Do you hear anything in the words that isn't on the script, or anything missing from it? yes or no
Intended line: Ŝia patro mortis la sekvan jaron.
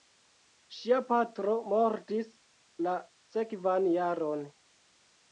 no